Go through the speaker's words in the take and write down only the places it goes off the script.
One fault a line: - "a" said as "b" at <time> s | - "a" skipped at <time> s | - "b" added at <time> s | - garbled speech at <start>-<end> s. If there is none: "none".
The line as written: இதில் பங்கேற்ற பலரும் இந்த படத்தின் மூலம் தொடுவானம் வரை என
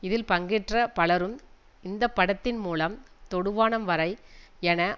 none